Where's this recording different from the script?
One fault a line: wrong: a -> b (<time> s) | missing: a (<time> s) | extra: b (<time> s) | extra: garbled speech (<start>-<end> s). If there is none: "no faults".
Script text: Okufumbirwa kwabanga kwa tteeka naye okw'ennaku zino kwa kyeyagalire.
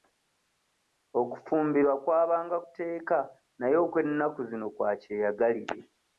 missing: kwa (2.6 s)